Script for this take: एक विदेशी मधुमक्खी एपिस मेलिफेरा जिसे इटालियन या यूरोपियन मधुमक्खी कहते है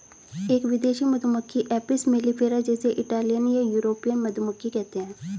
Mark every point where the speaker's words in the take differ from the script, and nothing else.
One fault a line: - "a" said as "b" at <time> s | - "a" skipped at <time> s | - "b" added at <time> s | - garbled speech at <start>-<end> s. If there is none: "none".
none